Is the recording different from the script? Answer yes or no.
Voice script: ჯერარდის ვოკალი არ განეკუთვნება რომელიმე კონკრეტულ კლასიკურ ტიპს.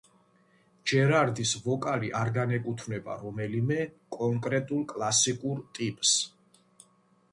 no